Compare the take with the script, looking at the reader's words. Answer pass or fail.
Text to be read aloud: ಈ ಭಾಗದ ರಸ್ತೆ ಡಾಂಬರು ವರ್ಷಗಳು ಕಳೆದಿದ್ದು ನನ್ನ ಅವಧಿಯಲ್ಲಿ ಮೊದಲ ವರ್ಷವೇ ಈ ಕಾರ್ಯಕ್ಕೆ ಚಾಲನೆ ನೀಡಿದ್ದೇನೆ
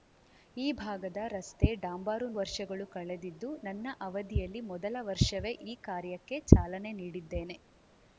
pass